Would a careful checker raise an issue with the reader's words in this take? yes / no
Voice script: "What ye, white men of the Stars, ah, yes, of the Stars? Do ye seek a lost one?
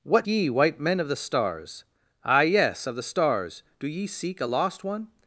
no